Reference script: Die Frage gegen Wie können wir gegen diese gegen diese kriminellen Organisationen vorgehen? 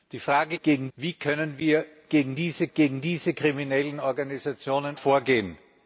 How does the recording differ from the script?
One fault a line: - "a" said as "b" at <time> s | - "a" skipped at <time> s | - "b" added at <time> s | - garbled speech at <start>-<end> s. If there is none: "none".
none